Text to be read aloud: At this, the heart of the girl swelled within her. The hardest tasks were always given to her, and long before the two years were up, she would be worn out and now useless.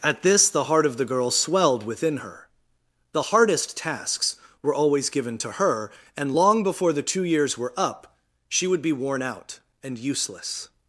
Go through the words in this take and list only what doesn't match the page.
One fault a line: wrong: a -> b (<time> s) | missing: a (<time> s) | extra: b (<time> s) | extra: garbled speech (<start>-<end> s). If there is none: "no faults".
missing: now (10.0 s)